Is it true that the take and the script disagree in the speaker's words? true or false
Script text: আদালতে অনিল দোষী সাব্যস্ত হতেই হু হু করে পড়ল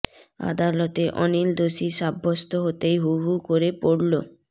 false